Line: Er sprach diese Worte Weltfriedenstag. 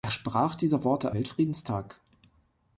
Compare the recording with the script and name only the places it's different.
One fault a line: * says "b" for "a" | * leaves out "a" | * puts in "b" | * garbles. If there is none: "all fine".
all fine